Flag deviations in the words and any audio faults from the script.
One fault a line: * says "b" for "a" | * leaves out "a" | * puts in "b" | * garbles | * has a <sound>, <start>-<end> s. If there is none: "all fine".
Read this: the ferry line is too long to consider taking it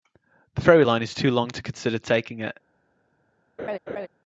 * has a laugh, 3.6-4.1 s